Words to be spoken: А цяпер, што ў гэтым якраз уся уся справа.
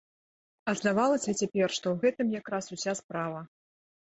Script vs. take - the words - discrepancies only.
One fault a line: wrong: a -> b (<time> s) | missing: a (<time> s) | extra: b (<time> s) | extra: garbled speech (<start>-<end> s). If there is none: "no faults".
extra: здавалася (0.8 s)
missing: уся (3.0 s)